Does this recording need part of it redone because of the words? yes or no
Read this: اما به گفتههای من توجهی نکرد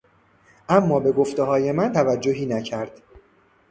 no